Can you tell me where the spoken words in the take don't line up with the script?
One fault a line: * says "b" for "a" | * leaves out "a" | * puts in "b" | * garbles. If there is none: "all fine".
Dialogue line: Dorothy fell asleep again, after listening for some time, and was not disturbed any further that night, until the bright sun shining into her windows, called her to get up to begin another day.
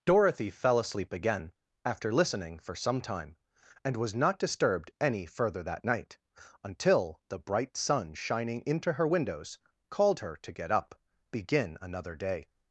* leaves out "to"